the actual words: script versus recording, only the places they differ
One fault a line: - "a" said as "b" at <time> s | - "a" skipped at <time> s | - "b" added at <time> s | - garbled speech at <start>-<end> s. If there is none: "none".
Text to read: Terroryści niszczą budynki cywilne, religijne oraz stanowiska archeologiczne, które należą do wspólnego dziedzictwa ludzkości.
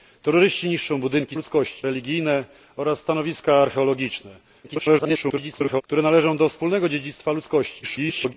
- "cywilne" said as "ludzkości" at 1.3 s
- garbled speech at 4.6-5.8 s
- garbled speech at 7.8-8.3 s